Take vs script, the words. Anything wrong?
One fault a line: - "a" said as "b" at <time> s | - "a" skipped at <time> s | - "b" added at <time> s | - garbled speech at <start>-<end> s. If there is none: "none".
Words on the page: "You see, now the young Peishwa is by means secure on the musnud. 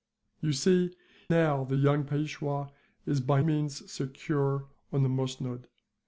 none